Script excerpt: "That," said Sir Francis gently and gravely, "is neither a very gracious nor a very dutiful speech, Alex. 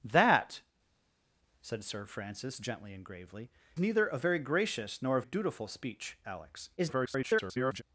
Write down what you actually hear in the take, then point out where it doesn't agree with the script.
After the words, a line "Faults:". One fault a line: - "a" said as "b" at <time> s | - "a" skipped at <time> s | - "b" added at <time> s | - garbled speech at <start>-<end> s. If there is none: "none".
"That," said Sir Francis gently and gravely, "neither a very gracious nor a dutiful speech, Alex. [garbled]
Faults:
- "is" skipped at 3.5 s
- "very" skipped at 5.2 s
- garbled speech at 6.8-7.8 s